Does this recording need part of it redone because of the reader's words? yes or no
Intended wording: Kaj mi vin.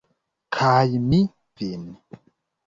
no